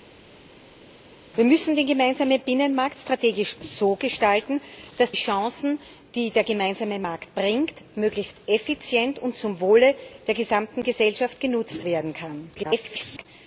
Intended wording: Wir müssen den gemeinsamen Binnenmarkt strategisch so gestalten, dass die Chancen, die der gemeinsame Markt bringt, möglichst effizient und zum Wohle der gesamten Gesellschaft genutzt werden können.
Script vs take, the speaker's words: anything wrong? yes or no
yes